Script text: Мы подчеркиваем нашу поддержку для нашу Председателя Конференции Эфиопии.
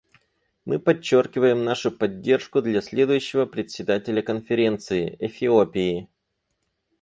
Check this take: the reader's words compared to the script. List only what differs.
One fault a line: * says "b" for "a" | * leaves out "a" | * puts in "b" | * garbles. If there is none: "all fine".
* says "следующего" for "нашу"